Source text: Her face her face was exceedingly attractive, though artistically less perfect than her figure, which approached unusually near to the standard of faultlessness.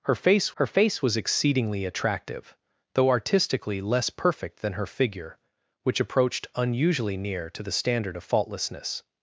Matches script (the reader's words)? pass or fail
pass